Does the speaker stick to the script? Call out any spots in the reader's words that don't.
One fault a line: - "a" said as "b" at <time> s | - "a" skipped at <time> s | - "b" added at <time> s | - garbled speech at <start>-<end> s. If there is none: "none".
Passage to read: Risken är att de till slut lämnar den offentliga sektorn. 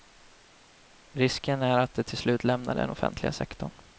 none